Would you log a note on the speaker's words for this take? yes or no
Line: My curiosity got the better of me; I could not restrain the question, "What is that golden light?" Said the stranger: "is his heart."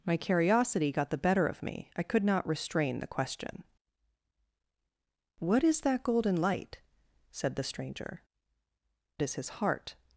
no